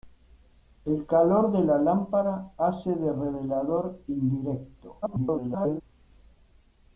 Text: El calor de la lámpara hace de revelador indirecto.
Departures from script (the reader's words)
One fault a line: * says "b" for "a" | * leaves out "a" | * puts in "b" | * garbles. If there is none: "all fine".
* garbles